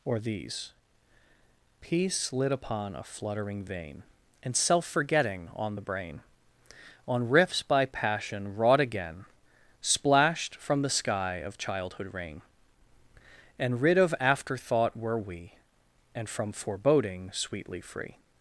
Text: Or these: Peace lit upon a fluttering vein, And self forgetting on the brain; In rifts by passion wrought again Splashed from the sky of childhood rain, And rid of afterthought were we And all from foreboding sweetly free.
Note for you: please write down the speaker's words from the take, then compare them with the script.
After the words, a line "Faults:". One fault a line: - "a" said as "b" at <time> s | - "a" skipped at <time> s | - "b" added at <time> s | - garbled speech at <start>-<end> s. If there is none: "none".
Or these: Peace lit upon a fluttering vein, And self forgetting on the brain; On rifts by passion wrought again Splashed from the sky of childhood rain, And rid of afterthought were we And from foreboding sweetly free.
Faults:
- "In" said as "On" at 7.1 s
- "all" skipped at 16.3 s